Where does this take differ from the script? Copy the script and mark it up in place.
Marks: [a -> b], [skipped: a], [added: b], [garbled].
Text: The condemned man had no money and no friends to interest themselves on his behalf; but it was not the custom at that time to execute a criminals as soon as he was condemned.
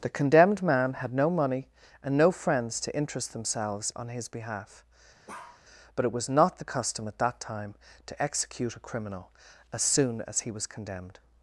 The condemned man had no money and no friends to interest themselves on his behalf; but it was not the custom at that time to execute a [criminals -> criminal] as soon as he was condemned.